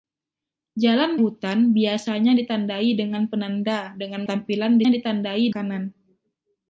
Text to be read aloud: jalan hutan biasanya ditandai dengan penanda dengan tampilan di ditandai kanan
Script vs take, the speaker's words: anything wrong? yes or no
no